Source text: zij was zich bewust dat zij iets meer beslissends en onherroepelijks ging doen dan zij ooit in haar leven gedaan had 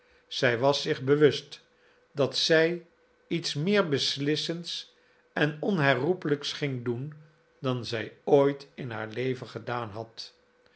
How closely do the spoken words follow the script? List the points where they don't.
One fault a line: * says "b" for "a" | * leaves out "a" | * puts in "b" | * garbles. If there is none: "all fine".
all fine